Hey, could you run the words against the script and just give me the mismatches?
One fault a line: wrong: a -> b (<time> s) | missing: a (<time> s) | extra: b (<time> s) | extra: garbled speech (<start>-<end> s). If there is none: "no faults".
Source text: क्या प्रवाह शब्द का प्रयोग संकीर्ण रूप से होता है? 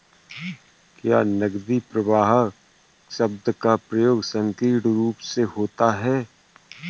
extra: नकदी (1.2 s)